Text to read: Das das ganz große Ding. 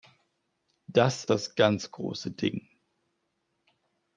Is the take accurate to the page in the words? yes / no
yes